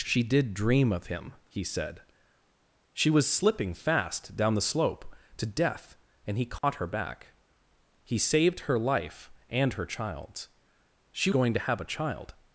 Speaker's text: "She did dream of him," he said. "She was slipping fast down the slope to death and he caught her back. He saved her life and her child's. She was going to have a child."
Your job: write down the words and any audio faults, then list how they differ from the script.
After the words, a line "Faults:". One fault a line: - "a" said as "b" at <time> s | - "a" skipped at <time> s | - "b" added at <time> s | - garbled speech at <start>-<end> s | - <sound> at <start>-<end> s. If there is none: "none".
"She did dream of him," he said. "She was slipping fast down the slope to death and he caught her back. He saved her life and her child's. She going to have a child."
Faults:
- dropout at 6.6-6.6 s
- "was" skipped at 11.3 s